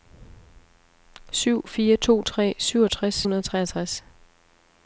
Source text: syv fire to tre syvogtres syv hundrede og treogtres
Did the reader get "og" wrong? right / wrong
right